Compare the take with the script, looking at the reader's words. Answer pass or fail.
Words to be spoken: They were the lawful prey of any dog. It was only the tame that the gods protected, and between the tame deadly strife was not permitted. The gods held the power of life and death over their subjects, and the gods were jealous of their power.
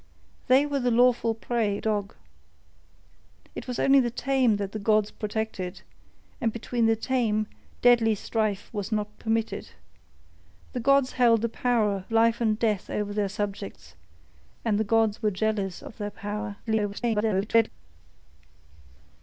fail